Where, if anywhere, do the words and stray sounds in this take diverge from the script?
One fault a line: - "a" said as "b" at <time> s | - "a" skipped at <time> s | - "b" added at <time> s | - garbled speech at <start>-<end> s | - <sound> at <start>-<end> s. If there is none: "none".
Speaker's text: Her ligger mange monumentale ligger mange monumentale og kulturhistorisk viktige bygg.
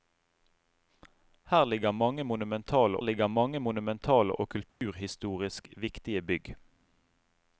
- dropout at 4.7-4.8 s